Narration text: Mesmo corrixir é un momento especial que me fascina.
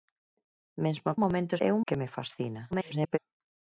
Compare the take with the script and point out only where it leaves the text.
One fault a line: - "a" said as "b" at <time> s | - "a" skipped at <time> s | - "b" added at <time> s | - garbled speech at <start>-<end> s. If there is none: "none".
- "corrixir" said as "momento" at 1.2 s
- "momento especial" skipped at 1.8 s
- garbled speech at 2.7-3.2 s